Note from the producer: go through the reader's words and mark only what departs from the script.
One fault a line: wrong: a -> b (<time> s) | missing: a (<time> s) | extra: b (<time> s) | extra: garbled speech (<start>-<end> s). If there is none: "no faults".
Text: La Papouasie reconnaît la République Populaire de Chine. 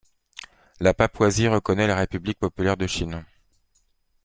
no faults